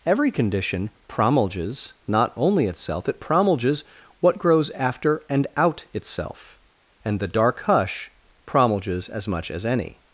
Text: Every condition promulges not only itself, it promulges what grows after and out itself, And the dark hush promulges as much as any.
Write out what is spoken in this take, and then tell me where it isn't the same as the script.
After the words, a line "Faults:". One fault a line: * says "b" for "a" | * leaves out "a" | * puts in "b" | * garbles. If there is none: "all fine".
Every condition promulges not only itself, it promulges what grows after and out itself, And the dark hush promulges as much as any.
Faults:
all fine